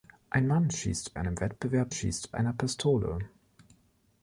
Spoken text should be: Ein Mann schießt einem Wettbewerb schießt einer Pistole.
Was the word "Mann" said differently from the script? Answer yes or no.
no